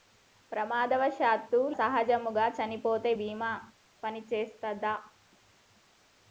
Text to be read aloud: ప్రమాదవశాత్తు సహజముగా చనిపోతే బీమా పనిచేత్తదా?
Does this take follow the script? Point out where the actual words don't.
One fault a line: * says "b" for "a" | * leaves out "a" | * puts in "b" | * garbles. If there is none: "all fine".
all fine